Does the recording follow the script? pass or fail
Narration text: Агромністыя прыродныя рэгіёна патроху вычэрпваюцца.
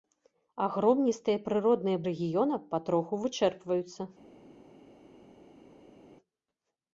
pass